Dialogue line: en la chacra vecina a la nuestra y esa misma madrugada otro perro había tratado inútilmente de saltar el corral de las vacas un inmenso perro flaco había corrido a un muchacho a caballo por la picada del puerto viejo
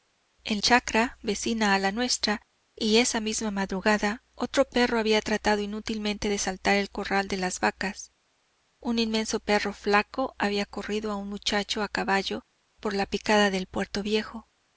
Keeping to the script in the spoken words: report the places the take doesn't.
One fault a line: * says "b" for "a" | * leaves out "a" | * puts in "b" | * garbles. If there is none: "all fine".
* leaves out "la"